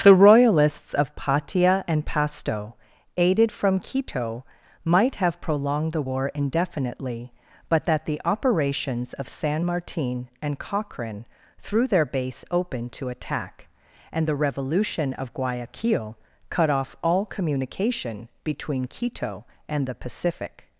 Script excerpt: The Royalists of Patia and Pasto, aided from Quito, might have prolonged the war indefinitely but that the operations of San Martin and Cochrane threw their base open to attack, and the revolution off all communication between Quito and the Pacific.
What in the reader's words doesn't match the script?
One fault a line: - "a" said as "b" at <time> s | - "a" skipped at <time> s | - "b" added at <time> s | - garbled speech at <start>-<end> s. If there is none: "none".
- "of Guayaquil cut" added at 15.1 s